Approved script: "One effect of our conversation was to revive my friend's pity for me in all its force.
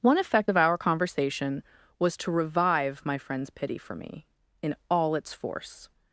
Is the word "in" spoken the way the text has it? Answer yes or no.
yes